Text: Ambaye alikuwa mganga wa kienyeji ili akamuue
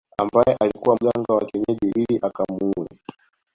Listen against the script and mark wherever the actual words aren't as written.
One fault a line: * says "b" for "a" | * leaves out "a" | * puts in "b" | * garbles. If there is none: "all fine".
all fine